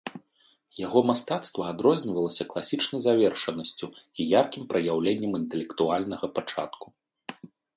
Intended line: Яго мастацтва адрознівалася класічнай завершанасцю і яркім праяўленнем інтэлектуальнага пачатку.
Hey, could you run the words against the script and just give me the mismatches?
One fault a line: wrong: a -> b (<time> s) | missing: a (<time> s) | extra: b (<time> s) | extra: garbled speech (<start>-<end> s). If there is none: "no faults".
no faults